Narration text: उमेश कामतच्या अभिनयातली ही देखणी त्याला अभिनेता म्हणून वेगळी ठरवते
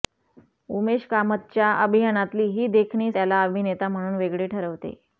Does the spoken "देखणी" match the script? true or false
true